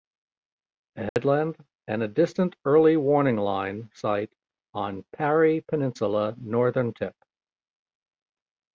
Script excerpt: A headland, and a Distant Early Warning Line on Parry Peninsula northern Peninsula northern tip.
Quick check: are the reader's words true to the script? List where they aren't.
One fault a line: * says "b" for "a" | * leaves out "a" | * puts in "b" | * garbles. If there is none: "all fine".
* puts in "site"
* leaves out "Peninsula northern"